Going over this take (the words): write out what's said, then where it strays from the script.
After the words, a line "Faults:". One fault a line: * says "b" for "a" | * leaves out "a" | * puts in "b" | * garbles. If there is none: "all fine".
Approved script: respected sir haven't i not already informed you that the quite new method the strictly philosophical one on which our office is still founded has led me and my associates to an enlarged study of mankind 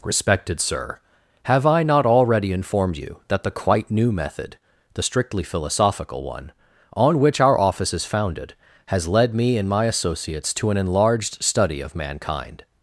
respected sir have i not already informed you that the quite new method the strictly philosophical one on which our office is founded has led me and my associates to an enlarged study of mankind
Faults:
* says "have" for "haven't"
* leaves out "still"